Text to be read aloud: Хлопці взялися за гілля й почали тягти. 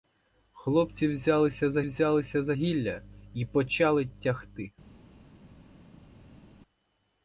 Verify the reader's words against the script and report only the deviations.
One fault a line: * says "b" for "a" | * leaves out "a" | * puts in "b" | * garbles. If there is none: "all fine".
* puts in "взялися за"